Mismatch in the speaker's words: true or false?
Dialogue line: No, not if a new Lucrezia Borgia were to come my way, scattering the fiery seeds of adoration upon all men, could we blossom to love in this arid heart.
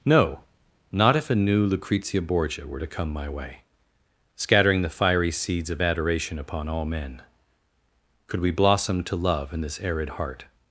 false